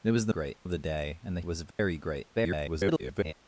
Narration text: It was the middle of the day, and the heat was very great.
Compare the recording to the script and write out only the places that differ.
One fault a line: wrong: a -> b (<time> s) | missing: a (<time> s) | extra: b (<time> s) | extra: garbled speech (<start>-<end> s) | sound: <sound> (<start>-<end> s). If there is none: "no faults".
wrong: middle -> great (0.3 s)
missing: heat (1.4 s)
sound: dropout (1.7-1.8 s)
extra: garbled speech (2.3-3.3 s)